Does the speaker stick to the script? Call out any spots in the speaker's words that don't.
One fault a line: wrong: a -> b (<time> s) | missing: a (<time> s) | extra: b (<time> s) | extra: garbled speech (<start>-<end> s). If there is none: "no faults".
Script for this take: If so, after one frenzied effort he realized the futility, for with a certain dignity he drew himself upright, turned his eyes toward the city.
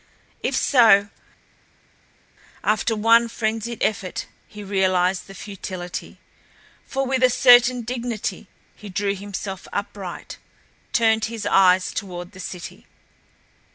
no faults